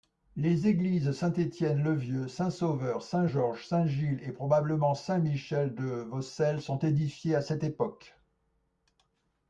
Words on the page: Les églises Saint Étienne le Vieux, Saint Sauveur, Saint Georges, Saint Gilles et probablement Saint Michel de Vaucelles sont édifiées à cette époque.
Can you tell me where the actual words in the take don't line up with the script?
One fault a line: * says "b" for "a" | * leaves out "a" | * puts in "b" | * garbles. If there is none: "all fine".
all fine